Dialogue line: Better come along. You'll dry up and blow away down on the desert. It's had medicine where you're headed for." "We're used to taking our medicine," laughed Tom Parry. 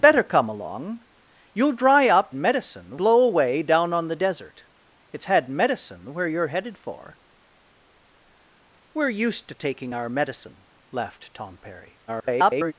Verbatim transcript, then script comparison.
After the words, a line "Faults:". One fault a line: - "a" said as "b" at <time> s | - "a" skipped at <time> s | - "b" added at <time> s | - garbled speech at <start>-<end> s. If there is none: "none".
Better come along. You'll dry up medicine blow away down on the desert. It's had medicine where you're headed for." "We're used to taking our medicine," laughed Tom Parry. [garbled]
Faults:
- "and" said as "medicine" at 2.3 s
- garbled speech at 12.1-12.7 s